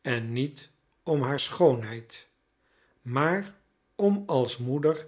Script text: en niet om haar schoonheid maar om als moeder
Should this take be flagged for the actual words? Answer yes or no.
no